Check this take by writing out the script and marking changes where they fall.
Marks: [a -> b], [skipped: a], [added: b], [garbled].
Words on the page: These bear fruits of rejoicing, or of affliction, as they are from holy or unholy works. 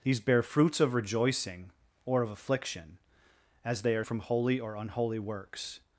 These bear fruits of rejoicing, or of affliction, as they are from holy or unholy works.